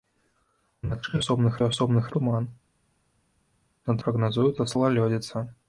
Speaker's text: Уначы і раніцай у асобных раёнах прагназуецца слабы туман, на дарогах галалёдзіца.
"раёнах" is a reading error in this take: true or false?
true